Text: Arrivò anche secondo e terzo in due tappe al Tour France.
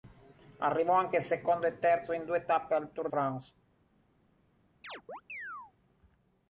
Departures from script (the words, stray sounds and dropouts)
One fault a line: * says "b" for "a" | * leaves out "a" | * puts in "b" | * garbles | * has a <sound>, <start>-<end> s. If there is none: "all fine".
* has a chirp, 4.8-5.7 s